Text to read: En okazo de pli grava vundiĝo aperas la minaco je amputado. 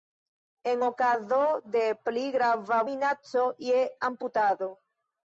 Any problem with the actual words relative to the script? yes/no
yes